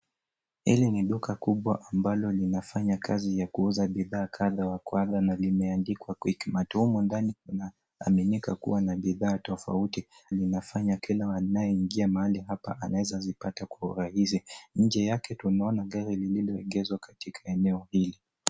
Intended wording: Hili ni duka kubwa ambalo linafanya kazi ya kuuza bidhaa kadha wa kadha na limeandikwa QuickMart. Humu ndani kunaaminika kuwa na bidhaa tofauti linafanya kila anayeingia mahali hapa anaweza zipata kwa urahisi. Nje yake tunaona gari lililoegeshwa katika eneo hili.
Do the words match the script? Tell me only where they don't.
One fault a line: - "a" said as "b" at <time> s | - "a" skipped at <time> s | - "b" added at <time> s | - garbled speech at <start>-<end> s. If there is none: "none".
none